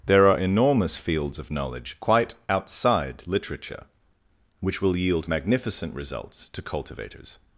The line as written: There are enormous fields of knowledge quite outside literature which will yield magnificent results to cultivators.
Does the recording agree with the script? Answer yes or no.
yes